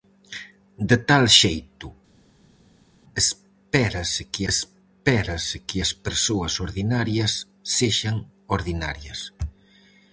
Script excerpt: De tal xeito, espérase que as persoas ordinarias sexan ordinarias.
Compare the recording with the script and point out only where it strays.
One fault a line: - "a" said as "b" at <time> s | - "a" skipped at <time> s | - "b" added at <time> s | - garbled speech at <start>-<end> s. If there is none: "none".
- "espérase que" added at 4.5 s